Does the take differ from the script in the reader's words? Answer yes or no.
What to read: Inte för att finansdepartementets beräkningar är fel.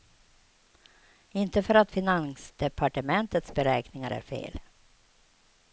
no